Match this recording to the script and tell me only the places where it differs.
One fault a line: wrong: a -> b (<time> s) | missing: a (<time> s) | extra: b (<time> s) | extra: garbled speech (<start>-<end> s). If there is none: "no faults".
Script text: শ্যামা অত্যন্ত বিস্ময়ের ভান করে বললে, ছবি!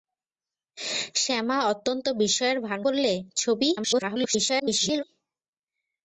missing: করে (2.8 s)
extra: garbled speech (3.8-5.0 s)